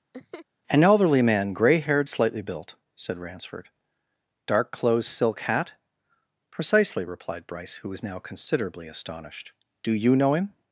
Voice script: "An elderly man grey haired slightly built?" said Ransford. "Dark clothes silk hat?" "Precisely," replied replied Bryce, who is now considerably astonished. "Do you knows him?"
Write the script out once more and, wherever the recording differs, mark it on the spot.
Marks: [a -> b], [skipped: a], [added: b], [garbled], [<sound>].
[laugh] "An elderly man grey haired slightly built?" said Ransford. "Dark clothes silk hat?" "Precisely," replied [skipped: replied] Bryce, who [is -> was] now considerably astonished. "Do you [knows -> know] him?"